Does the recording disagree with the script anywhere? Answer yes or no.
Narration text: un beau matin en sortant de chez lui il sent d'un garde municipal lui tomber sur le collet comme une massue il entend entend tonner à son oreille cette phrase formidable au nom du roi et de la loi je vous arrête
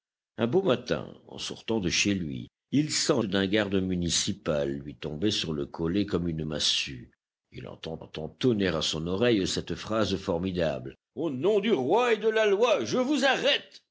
no